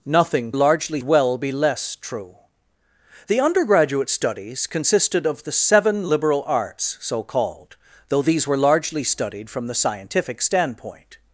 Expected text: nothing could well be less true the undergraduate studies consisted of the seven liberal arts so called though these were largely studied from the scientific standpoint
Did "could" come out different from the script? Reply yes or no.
yes